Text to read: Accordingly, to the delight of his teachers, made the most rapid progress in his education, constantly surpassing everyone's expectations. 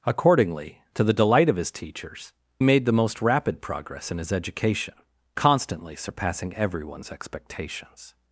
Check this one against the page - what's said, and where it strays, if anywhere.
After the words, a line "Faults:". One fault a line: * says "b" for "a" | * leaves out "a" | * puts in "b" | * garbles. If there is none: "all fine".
Accordingly, to the delight of his teachers, made the most rapid progress in his education, constantly surpassing everyone's expectations.
Faults:
all fine